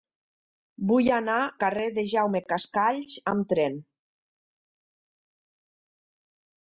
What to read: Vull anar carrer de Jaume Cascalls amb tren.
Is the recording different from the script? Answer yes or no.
no